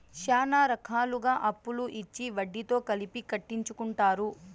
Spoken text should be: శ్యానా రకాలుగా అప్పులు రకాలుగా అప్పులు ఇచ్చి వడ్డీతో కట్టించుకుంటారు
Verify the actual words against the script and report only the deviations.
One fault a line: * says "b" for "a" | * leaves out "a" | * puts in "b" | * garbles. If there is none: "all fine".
* leaves out "రకాలుగా అప్పులు"
* puts in "కలిపి"